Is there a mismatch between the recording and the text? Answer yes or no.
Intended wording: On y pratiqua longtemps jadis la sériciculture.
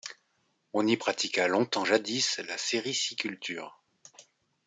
no